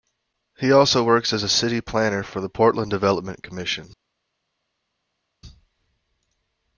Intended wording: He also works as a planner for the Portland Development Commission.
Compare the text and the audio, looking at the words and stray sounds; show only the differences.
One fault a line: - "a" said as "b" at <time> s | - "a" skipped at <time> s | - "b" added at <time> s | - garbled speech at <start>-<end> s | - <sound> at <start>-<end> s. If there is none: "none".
- "city" added at 1.5 s